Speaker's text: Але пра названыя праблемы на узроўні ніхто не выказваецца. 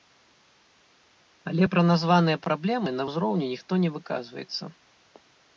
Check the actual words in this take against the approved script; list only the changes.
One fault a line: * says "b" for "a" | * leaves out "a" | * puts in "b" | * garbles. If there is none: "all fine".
all fine